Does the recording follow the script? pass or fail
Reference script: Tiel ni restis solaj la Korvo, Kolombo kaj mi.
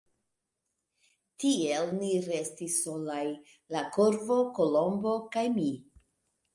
pass